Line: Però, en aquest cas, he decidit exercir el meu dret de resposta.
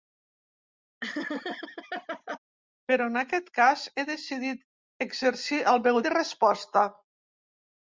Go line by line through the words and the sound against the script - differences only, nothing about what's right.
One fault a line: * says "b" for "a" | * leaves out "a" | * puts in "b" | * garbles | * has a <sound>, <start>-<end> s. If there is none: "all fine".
* has a laugh, 1.0-2.4 s
* leaves out "dret"